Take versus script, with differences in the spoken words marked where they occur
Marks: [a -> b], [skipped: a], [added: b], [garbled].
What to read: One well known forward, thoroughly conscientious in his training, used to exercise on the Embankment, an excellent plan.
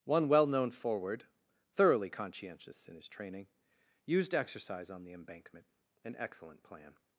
One well known forward, thoroughly conscientious in his training, used [skipped: to] exercise on the Embankment, an excellent plan.